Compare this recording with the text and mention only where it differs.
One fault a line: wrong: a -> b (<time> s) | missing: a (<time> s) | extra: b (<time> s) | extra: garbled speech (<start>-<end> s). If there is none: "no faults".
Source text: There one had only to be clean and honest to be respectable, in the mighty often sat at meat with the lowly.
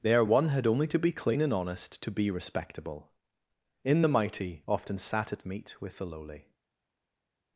no faults